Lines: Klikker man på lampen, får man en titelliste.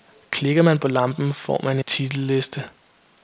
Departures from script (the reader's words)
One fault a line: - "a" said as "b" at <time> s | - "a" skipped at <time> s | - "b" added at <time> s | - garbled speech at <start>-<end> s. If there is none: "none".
- "en" skipped at 1.8 s